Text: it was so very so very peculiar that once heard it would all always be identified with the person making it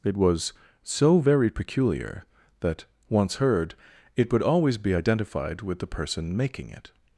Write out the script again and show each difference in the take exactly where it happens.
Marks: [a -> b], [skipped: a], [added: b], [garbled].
it was so very [skipped: so very] peculiar that once heard it would [skipped: all] always be identified with the person making it